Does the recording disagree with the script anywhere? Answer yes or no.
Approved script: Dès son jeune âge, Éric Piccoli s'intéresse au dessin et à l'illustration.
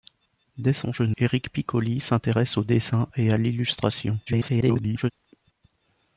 yes